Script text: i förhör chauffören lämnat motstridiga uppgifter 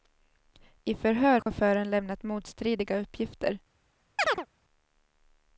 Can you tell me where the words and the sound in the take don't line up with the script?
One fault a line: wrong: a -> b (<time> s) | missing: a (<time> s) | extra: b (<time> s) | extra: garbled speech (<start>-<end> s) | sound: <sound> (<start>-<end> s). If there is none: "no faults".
sound: dropout (1.4-1.5 s)
sound: chirp (4.2-4.5 s)